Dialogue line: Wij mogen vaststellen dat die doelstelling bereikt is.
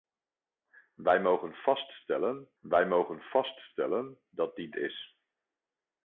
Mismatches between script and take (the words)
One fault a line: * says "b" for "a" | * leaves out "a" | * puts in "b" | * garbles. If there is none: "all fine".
* puts in "wij mogen vaststellen"
* leaves out "doelstelling bereikt"